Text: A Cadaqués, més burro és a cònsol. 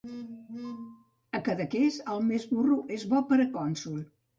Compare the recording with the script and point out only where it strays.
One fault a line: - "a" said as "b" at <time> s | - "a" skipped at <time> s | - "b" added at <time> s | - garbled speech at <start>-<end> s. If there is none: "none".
- "el" added at 2.2 s
- "bo per" added at 3.1 s